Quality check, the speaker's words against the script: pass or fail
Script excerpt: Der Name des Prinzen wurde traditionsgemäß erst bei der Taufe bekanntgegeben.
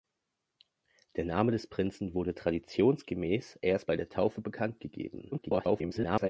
fail